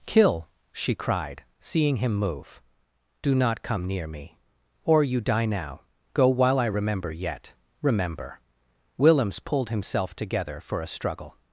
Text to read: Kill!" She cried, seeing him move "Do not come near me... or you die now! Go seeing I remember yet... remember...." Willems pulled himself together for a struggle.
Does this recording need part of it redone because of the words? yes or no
yes